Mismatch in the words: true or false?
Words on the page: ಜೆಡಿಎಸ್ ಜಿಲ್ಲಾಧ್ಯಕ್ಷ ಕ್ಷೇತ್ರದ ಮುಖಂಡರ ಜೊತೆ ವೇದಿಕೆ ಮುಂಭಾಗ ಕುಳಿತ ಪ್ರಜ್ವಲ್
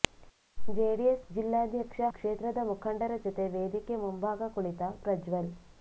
false